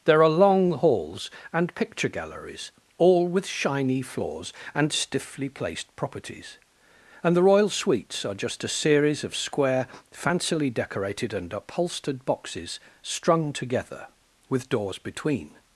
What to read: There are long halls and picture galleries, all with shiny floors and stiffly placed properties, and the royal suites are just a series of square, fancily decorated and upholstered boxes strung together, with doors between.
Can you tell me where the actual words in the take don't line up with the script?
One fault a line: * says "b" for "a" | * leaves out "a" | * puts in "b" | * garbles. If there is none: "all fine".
all fine